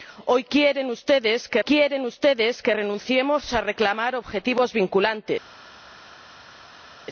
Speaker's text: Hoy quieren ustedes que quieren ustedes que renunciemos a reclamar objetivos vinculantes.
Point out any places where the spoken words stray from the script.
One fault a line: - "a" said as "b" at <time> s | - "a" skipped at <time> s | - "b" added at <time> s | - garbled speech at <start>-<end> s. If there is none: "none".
none